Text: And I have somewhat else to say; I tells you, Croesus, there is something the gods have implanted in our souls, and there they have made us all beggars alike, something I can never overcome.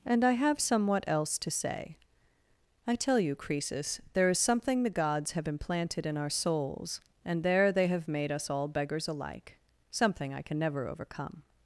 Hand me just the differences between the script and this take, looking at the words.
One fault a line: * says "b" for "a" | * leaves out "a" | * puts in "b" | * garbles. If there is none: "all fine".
* says "tell" for "tells"